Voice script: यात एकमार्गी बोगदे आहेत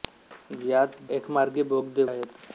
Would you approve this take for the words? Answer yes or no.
yes